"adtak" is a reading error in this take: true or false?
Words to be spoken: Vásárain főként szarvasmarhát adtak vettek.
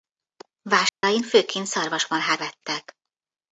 true